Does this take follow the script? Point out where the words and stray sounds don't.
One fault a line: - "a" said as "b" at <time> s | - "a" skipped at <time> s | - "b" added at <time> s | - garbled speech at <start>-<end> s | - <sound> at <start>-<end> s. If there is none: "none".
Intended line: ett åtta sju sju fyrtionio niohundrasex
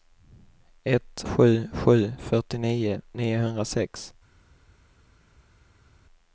- "åtta" skipped at 1.2 s